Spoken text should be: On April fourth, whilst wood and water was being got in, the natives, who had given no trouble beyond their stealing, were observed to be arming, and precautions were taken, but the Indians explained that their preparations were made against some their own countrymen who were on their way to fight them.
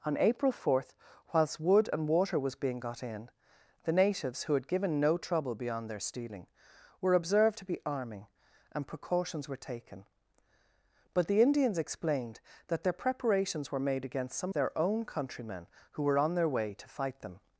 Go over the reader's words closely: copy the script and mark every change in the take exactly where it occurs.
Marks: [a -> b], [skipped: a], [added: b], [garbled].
On April fourth, whilst wood and water was being got in, the natives, who had given no trouble beyond their stealing, were observed to be arming, and precautions were taken, but the Indians explained that their preparations were made against some their own countrymen who were on their way to fight them.